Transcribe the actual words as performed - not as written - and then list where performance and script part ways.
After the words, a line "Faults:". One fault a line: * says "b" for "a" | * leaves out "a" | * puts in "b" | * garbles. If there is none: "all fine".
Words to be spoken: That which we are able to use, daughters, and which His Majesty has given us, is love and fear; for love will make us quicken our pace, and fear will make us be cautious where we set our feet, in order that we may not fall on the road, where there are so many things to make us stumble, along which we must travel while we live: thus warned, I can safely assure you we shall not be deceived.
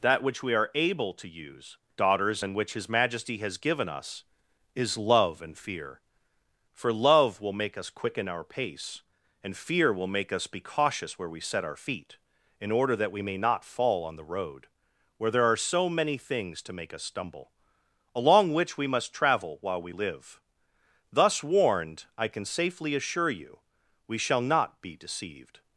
That which we are able to use, daughters, and which His Majesty has given us, is love and fear; for love will make us quicken our pace, and fear will make us be cautious where we set our feet, in order that we may not fall on the road, where there are so many things to make us stumble, along which we must travel while we live: thus warned, I can safely assure you we shall not be deceived.
Faults:
all fine